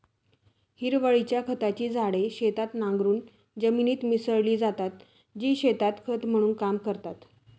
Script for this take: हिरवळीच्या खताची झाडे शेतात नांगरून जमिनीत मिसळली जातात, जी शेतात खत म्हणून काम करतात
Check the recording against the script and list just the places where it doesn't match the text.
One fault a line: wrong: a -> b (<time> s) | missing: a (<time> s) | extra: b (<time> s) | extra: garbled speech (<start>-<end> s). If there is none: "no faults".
no faults